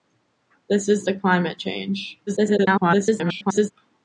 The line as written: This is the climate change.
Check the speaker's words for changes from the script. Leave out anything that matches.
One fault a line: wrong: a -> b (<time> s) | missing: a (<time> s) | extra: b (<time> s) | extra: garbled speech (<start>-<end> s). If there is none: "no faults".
extra: garbled speech (2.3-3.7 s)